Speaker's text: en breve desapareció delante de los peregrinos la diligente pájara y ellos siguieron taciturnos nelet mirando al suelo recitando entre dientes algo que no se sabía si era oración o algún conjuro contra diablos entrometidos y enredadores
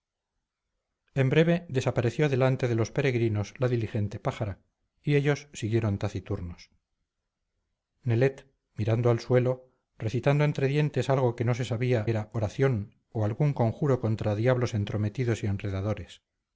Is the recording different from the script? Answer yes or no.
yes